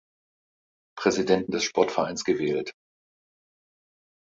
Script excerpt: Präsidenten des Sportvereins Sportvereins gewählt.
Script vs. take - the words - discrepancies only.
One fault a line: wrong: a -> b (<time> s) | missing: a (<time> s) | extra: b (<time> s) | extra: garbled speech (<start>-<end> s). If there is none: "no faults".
missing: Sportvereins (2.3 s)